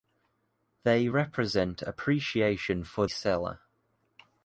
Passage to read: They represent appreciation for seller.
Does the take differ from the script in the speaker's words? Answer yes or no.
no